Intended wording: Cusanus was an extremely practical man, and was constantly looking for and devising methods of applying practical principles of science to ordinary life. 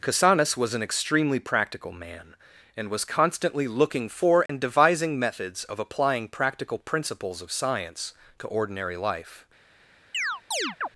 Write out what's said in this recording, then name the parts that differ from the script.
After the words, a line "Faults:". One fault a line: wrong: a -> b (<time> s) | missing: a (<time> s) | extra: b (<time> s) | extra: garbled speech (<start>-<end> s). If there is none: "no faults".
Cusanus was an extremely practical man, and was constantly looking for and devising methods of applying practical principles of science to ordinary life.
Faults:
no faults